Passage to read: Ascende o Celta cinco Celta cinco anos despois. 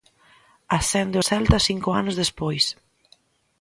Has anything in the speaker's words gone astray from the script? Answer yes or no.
yes